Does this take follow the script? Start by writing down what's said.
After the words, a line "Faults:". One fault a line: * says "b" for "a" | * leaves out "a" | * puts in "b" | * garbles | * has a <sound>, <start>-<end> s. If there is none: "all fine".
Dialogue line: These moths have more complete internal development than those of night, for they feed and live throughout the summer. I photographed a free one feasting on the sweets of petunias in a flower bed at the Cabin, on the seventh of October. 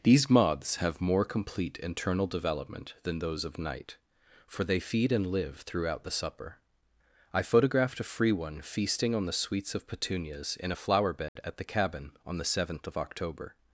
These moths have more complete internal development than those of night, for they feed and live throughout the supper. I photographed a free one feasting on the sweets of petunias in a flower bed at the Cabin, on the seventh of October.
Faults:
* says "supper" for "summer"
* has a dropout, 11.3-11.4 s